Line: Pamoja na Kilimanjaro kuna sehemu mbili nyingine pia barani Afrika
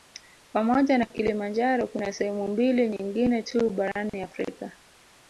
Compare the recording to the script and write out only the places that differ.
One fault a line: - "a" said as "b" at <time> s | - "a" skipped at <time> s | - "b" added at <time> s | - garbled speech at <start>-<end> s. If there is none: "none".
- "pia" said as "tu" at 3.4 s